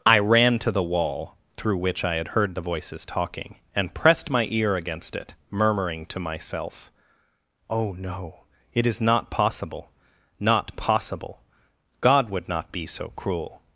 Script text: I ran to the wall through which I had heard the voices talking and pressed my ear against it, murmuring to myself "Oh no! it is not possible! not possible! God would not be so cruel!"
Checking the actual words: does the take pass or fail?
pass